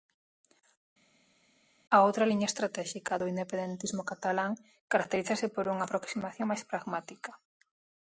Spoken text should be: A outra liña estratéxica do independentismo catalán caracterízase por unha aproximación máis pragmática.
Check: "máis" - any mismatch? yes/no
no